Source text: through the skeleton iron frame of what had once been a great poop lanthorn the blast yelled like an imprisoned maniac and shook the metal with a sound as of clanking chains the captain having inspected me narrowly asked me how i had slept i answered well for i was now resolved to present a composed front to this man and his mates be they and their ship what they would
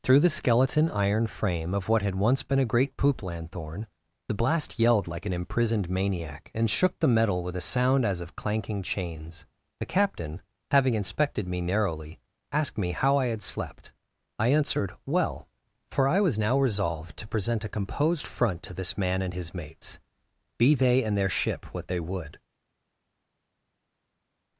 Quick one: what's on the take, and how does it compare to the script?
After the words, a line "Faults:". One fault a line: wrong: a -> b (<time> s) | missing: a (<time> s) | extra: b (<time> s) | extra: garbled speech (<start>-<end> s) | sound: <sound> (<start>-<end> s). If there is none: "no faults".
through the skeleton iron frame of what had once been a great poop lanthorn the blast yelled like an imprisoned maniac and shook the metal with a sound as of clanking chains the captain having inspected me narrowly asked me how i had slept i answered well for i was now resolved to present a composed front to this man and his mates be they and their ship what they would
Faults:
no faults